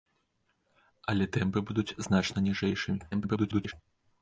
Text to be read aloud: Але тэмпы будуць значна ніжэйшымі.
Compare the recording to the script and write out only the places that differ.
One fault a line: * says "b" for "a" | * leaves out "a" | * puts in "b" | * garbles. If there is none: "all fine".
* garbles